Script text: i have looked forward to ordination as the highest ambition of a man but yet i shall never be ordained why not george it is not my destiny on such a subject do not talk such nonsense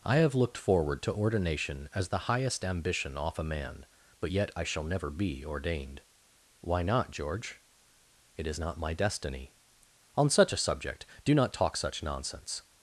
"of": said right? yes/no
no